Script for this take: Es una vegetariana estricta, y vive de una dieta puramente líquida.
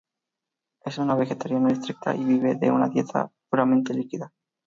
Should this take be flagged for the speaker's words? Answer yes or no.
no